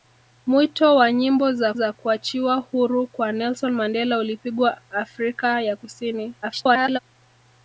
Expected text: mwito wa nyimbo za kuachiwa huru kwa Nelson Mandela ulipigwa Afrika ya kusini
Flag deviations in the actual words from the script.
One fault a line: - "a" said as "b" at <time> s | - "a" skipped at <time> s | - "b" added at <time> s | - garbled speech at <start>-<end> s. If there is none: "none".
- "za" added at 1.7 s
- garbled speech at 6.4-7.0 s